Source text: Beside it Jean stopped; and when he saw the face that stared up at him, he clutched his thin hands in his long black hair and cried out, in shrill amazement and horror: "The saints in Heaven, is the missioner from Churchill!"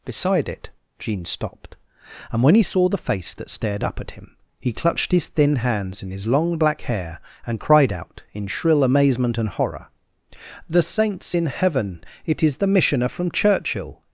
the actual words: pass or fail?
fail